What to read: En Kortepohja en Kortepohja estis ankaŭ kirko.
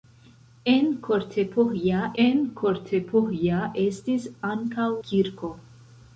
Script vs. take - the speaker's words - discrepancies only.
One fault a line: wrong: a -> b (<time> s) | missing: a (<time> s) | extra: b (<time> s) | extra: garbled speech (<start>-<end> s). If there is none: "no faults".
no faults